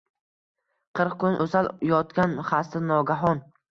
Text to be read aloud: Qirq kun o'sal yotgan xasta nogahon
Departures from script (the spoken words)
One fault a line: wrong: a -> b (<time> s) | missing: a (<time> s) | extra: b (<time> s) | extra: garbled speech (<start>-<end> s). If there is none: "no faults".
no faults